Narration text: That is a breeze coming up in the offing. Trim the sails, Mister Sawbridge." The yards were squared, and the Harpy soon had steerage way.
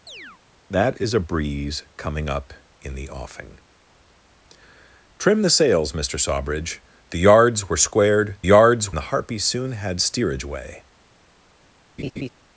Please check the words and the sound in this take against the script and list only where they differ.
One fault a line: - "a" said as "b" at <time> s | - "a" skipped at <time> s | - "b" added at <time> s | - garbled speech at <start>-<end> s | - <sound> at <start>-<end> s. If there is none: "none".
- chirp at 0.1-0.4 s
- "and" said as "yards" at 8.4 s
- laugh at 12.0-12.3 s